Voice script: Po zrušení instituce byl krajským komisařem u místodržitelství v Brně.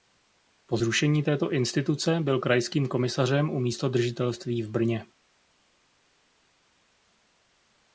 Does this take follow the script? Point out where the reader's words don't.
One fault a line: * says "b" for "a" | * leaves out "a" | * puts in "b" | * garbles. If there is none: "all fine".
* puts in "této"